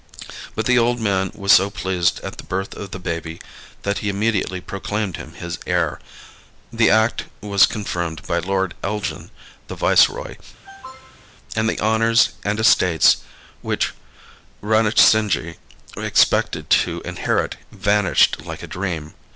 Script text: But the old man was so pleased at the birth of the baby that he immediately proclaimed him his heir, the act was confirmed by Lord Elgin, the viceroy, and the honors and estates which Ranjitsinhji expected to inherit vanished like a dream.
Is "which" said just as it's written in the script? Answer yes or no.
yes